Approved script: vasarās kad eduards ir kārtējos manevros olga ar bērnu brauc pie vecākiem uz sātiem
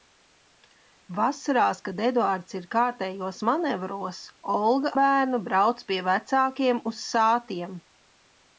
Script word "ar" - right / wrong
wrong